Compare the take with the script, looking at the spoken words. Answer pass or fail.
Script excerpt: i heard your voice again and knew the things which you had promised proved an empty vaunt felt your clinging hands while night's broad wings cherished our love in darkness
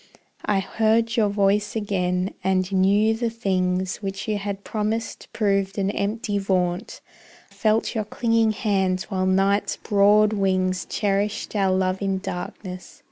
pass